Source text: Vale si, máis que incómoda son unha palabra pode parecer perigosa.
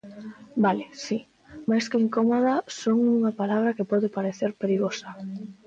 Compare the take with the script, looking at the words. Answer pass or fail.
fail